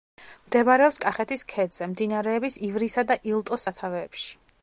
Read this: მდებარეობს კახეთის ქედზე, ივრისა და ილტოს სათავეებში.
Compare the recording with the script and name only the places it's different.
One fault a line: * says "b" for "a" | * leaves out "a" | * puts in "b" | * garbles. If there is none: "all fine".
* puts in "მდინარეების"